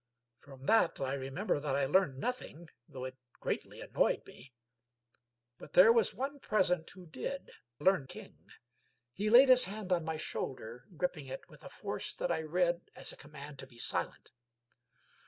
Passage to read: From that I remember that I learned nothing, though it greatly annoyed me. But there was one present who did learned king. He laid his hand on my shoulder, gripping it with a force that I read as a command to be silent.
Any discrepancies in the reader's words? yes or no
no